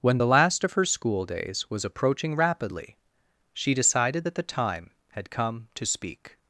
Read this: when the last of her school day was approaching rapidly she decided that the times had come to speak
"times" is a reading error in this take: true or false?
true